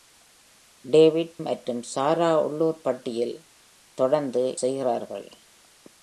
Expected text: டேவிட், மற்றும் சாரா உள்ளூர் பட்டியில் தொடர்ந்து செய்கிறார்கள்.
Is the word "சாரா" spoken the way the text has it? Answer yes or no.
yes